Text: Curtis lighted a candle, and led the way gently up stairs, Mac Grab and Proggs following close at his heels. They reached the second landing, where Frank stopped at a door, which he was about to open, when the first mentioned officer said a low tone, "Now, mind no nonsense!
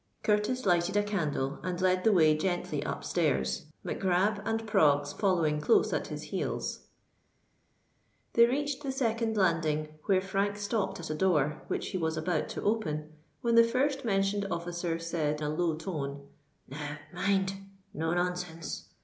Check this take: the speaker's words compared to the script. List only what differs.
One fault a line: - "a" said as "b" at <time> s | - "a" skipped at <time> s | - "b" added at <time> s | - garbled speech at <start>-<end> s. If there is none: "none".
none